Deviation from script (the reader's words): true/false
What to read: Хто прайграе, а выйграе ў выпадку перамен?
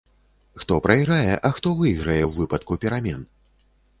true